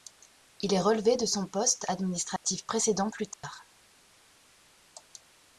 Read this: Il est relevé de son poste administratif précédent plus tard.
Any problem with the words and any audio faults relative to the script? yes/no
yes